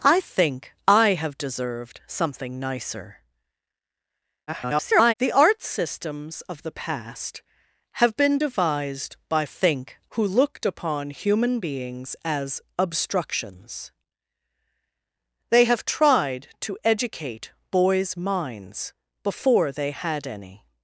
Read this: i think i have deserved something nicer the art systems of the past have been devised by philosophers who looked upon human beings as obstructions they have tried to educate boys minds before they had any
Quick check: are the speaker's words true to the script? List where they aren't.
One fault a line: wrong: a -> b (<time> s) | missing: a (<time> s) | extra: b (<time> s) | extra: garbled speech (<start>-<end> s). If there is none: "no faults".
extra: garbled speech (4.5-5.1 s)
wrong: philosophers -> think (9.4 s)